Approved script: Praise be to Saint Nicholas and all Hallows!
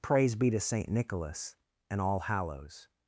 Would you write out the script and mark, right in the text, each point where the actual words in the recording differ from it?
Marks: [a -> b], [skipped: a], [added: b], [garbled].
Praise be to Saint Nicholas and all Hallows!